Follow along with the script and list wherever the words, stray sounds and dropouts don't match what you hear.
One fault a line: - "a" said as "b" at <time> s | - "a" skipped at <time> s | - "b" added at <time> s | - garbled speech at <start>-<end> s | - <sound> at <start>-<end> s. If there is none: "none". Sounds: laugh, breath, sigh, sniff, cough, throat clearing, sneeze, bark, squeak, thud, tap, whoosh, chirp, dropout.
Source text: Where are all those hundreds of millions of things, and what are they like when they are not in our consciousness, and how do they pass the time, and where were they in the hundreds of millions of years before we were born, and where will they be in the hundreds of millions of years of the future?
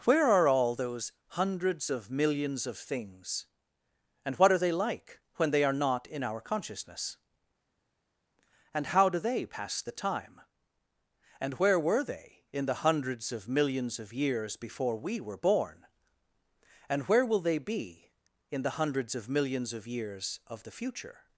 none